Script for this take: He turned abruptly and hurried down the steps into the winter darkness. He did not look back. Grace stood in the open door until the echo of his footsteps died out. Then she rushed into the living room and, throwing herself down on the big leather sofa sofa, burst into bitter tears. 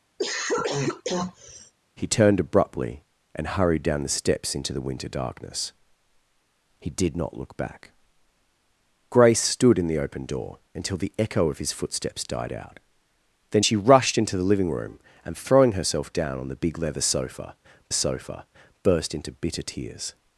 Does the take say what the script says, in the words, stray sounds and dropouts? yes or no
no